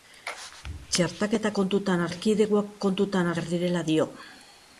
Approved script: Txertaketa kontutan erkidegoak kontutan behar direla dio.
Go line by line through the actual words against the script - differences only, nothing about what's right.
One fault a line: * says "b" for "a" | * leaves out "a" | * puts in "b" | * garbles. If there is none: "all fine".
all fine